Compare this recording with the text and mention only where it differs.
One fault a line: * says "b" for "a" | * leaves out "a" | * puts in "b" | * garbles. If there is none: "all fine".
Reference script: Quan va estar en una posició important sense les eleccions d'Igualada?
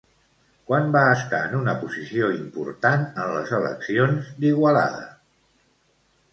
* says "en" for "sense"